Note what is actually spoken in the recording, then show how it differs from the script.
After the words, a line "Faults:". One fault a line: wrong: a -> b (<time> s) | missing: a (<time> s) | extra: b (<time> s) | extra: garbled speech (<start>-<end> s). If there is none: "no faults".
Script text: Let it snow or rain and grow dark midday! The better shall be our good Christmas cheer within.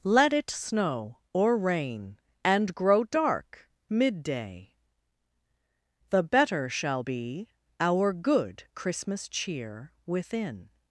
Let it snow or rain and grow dark midday! The better shall be our good Christmas cheer within.
Faults:
no faults